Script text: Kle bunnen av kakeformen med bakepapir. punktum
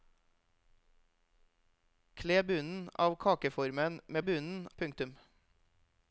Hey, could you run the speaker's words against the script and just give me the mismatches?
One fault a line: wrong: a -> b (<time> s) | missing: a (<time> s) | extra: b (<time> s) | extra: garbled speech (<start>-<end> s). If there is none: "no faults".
wrong: bakepapir -> bunnen (4.2 s)